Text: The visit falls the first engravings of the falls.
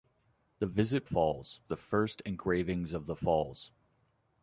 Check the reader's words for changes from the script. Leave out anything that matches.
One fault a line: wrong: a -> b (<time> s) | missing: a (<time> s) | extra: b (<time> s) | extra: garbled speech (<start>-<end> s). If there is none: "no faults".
no faults